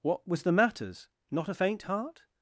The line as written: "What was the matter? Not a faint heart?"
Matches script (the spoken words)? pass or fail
fail